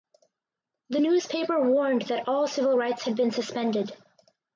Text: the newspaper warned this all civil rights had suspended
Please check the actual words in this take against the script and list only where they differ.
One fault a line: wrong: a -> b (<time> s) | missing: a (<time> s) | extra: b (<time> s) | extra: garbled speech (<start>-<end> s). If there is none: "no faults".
wrong: this -> that (2.0 s)
extra: been (3.2 s)